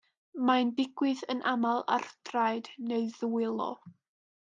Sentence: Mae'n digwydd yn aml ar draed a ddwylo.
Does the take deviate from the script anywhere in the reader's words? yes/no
yes